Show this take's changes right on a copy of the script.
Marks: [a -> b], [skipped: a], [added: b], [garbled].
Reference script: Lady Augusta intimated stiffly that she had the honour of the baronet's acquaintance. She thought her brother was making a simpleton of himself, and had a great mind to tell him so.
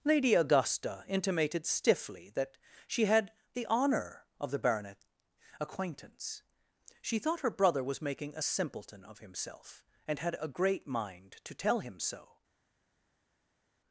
Lady Augusta intimated stiffly that she had the honour of the baronet's acquaintance. She thought her brother was making a simpleton of himself, and had a great mind to tell him so.